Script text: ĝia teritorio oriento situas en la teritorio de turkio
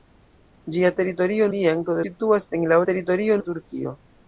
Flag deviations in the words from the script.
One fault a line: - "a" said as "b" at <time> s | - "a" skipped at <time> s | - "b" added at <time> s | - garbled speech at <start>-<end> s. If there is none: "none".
none